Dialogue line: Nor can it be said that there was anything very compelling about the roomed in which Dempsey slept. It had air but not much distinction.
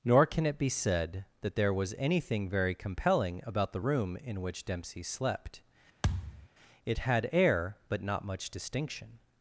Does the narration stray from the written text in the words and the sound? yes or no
yes